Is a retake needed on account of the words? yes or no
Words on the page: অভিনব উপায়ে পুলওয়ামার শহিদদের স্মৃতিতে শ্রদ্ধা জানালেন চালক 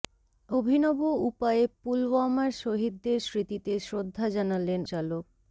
no